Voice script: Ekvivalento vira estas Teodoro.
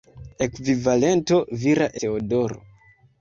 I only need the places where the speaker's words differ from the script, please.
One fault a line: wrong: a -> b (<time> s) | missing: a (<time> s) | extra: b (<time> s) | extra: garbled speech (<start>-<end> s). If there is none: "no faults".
missing: estas (1.9 s)